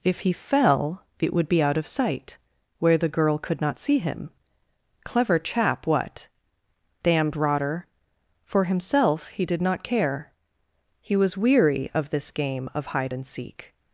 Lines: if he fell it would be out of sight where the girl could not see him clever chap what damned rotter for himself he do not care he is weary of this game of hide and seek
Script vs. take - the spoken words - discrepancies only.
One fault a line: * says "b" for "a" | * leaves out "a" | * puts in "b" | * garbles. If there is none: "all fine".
* says "did" for "do"
* says "was" for "is"